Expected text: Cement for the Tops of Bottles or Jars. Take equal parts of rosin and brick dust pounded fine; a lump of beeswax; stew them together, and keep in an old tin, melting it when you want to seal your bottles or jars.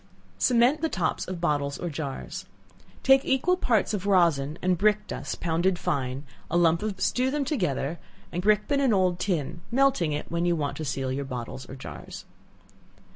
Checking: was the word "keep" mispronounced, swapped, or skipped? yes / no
yes